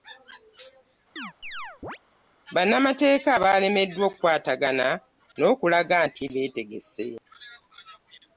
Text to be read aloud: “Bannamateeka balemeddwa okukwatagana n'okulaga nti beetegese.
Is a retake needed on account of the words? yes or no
no